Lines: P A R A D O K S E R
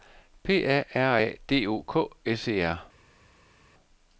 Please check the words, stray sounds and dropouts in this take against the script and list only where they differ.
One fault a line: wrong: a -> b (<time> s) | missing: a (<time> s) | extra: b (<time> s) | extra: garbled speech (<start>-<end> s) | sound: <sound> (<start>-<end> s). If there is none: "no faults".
no faults